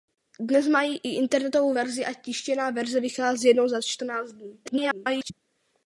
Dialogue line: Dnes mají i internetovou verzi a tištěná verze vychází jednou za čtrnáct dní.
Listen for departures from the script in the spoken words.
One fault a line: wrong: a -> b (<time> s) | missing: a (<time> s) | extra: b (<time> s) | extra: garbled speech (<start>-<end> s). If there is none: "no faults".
extra: garbled speech (4.7-5.3 s)